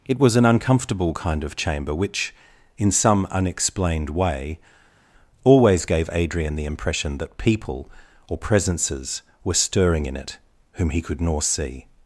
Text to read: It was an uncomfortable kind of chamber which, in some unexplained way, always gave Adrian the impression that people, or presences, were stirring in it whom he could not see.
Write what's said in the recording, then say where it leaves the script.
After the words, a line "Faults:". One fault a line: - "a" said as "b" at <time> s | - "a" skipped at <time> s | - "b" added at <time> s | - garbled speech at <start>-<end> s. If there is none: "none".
It was an uncomfortable kind of chamber which, in some unexplained way, always gave Adrian the impression that people, or presences, were stirring in it whom he could nor see.
Faults:
- "not" said as "nor" at 11.2 s